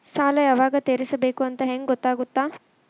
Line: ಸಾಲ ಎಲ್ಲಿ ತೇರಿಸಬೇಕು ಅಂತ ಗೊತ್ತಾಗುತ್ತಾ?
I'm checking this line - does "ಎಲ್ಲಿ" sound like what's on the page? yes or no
no